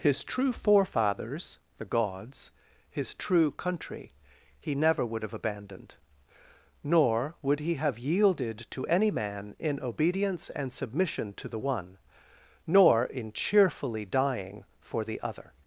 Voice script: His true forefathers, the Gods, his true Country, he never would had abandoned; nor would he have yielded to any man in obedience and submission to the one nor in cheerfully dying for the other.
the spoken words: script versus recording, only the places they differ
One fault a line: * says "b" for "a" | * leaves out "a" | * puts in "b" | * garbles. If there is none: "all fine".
* says "have" for "had"